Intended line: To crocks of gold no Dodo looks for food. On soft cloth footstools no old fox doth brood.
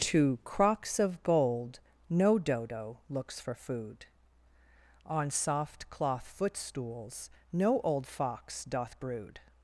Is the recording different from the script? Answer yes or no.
no